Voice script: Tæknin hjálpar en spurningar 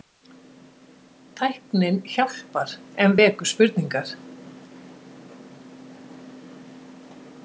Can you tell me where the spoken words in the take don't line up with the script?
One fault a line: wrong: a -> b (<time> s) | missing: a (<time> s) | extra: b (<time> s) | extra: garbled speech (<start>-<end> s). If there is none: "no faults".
extra: vekur (3.2 s)